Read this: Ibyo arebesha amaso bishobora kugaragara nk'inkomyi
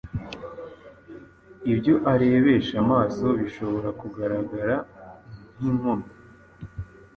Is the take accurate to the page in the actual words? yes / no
yes